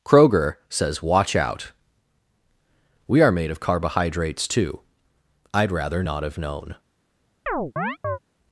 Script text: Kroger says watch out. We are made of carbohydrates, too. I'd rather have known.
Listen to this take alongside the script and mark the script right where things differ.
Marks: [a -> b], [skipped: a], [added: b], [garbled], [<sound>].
Kroger says watch out. We are made of carbohydrates, too. I'd rather [added: not] have known. [chirp]